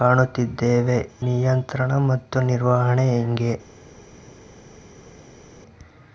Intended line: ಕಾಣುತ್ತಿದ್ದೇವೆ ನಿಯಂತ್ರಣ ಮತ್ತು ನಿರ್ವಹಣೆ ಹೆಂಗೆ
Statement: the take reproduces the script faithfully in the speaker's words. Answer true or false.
true